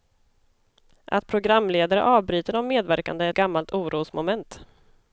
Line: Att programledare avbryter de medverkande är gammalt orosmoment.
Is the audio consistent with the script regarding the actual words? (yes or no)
yes